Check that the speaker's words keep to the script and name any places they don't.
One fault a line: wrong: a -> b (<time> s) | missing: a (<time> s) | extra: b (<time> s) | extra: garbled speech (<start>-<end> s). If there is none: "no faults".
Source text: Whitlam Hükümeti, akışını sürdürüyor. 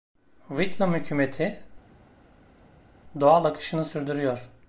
extra: doğal (3.2 s)